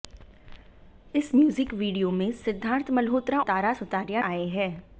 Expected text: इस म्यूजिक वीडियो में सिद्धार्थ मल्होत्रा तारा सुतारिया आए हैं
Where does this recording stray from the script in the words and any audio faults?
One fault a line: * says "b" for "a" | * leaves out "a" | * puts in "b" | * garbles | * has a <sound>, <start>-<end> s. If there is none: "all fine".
all fine